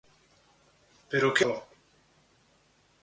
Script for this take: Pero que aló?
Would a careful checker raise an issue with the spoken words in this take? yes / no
no